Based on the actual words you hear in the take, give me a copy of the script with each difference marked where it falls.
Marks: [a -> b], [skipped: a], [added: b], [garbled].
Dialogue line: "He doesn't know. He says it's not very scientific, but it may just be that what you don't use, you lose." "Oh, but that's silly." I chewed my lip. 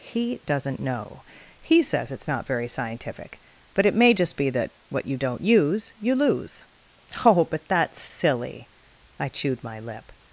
"He doesn't know. He says it's not very scientific, but it may just be that what you don't use, you lose." "Oh, but that's silly." I chewed my lip.